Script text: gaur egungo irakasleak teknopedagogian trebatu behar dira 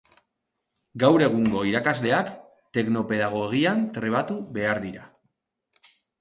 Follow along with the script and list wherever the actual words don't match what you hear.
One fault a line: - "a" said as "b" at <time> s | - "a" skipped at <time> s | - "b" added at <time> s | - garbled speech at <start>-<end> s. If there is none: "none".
none